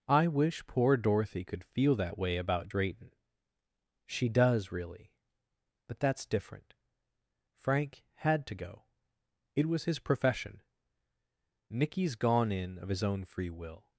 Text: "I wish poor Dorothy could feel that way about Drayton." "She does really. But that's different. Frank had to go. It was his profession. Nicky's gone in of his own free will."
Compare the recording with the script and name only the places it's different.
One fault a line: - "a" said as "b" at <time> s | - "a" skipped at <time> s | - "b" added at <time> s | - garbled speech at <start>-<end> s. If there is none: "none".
none